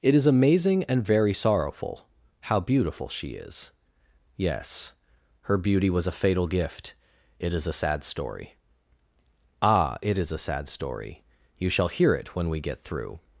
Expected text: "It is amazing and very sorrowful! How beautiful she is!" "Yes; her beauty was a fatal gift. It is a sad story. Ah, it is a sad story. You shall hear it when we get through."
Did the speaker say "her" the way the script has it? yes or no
yes